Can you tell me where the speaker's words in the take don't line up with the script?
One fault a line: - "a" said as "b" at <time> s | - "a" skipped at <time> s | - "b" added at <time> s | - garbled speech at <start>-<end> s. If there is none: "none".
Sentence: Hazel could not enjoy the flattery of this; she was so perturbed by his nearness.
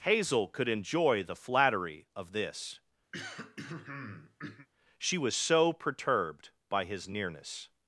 - "not" skipped at 0.7 s